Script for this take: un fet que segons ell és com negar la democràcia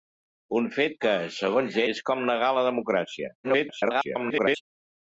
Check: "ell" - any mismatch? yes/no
yes